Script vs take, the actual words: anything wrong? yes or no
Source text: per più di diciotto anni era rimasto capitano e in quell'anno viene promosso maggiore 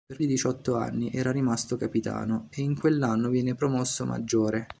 yes